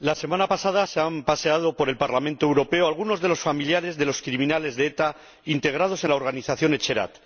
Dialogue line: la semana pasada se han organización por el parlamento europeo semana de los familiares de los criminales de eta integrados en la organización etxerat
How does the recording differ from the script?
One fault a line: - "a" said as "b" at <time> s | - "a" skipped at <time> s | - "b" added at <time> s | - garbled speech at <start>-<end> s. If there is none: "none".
- "organización" said as "paseado" at 1.2 s
- "semana" said as "algunos" at 2.9 s